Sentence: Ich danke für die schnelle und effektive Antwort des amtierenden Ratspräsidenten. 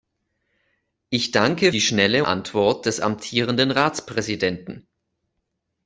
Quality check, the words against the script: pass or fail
fail